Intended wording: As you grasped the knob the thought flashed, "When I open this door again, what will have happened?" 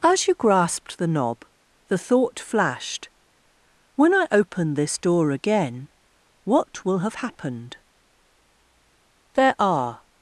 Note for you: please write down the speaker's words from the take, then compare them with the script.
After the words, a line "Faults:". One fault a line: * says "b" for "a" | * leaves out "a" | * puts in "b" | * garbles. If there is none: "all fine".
As you grasped the knob the thought flashed, "When I open this door again, what will have happened?" There are
Faults:
* puts in "There are"